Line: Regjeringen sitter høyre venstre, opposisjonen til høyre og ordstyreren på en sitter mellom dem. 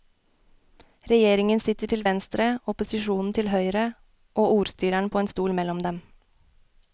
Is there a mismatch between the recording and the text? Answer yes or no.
yes